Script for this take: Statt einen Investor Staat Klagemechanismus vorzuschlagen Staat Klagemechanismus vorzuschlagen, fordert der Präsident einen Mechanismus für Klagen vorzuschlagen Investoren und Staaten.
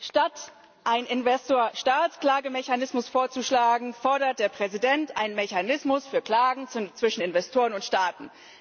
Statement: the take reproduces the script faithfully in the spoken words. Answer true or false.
false